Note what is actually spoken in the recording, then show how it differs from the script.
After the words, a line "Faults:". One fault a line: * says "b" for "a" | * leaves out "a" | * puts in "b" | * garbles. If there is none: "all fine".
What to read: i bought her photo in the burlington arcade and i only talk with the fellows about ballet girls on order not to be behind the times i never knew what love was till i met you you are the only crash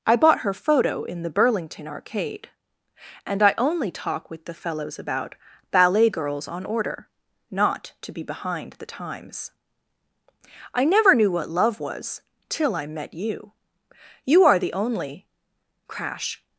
i bought her photo in the burlington arcade and i only talk with the fellows about ballet girls on order not to be behind the times i never knew what love was till i met you you are the only crash
Faults:
all fine